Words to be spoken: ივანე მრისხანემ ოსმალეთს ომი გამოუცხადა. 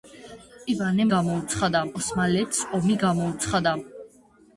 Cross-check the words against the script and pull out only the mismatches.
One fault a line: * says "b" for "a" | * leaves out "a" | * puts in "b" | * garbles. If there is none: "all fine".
* says "გამოუცხადა" for "მრისხანემ"